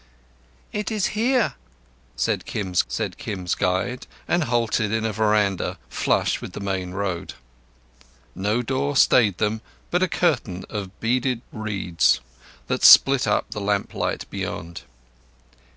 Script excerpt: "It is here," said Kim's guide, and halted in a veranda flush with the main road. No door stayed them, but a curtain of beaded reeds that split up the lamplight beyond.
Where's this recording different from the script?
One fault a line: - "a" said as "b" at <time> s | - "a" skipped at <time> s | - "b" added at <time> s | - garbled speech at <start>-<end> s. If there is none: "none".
- "said Kim's" added at 2.9 s